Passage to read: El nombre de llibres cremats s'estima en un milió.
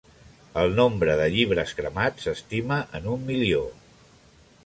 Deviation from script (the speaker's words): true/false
false